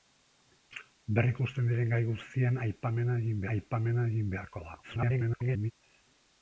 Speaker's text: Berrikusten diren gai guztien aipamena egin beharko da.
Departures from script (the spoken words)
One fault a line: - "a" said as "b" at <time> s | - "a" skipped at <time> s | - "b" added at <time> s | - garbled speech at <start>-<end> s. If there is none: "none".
- "aipamena egin" added at 3.5 s
- garbled speech at 4.8-5.7 s